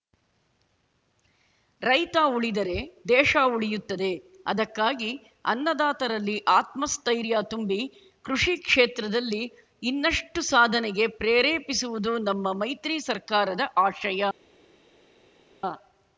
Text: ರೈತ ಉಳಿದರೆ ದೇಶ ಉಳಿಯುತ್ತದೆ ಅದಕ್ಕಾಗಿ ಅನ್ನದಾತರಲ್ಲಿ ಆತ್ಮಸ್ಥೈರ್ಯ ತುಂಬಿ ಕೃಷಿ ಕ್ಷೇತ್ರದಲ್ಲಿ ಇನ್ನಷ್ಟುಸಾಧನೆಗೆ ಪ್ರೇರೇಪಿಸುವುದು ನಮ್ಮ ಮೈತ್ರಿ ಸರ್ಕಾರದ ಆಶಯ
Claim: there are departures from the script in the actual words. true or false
false